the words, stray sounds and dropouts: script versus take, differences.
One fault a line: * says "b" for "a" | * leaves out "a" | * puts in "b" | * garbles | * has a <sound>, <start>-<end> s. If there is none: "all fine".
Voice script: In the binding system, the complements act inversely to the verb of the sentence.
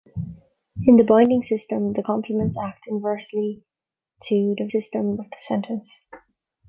* says "system" for "verb"